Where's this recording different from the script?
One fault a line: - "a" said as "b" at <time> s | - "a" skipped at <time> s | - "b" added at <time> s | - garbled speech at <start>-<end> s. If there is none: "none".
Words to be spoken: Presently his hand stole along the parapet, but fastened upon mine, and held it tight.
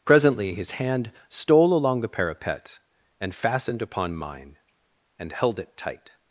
- "but" said as "and" at 3.2 s